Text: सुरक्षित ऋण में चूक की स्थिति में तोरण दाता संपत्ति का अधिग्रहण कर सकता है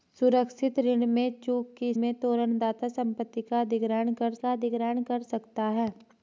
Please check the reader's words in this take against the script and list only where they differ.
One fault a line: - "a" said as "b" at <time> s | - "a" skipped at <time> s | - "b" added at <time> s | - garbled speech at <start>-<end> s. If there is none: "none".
- "स्थिति" skipped at 1.9 s
- "का अधिग्रहण कर" added at 4.3 s